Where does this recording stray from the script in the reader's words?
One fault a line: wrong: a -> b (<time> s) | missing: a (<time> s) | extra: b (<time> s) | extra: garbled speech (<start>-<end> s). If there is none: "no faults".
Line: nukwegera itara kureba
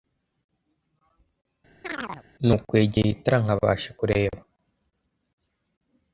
extra: nkabasha (3.4 s)